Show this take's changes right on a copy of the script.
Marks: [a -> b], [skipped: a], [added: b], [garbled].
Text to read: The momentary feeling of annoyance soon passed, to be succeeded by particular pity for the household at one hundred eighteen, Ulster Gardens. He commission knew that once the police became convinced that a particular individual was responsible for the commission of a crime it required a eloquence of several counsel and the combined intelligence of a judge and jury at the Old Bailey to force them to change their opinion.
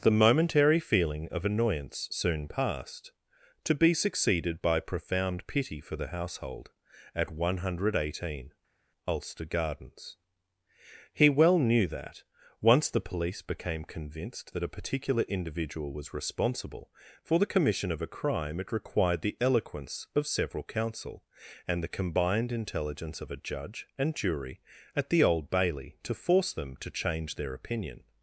The momentary feeling of annoyance soon passed, to be succeeded by [particular -> profound] pity for the household at one hundred eighteen, Ulster Gardens. He [commission -> well] knew that once the police became convinced that a particular individual was responsible for the commission of a crime it required [a -> the] eloquence of several counsel and the combined intelligence of a judge and jury at the Old Bailey to force them to change their opinion.